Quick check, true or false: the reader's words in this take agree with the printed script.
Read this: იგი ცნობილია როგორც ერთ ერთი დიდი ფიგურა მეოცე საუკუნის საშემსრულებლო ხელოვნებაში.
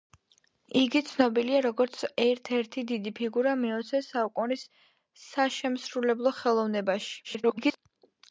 false